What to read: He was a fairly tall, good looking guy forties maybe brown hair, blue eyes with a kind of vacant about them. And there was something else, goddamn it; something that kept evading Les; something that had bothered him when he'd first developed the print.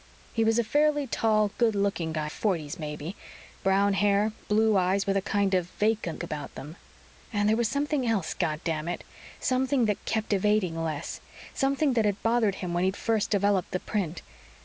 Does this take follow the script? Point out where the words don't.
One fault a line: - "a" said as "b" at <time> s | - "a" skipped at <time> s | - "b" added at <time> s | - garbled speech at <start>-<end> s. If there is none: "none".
none